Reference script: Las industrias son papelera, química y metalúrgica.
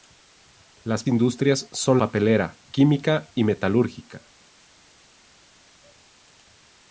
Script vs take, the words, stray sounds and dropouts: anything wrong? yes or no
no